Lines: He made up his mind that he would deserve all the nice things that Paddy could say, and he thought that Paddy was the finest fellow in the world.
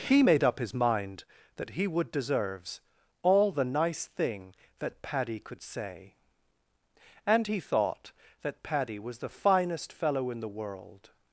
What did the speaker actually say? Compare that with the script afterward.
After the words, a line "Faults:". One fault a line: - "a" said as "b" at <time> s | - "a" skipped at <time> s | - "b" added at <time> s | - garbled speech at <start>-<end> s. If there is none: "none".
He made up his mind that he would deserves all the nice thing that Paddy could say, and he thought that Paddy was the finest fellow in the world.
Faults:
- "deserve" said as "deserves" at 2.1 s
- "things" said as "thing" at 4.0 s